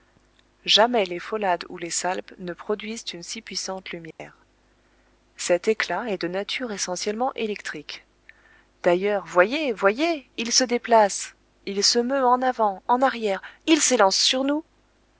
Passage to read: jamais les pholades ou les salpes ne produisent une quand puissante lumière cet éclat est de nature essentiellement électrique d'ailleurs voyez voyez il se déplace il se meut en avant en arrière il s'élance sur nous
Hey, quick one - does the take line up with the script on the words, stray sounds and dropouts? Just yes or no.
no